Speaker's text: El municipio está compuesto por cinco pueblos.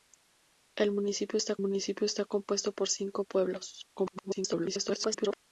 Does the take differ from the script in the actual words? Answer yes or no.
yes